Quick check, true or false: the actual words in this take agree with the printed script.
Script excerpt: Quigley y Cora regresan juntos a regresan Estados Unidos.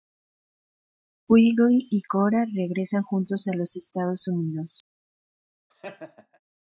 false